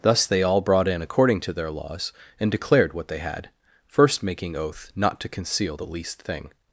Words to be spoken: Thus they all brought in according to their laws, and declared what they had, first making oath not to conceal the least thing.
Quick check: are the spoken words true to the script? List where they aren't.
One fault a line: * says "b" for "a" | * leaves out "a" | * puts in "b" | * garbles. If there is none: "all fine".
all fine